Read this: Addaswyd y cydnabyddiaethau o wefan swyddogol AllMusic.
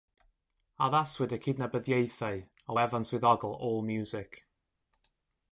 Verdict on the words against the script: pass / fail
pass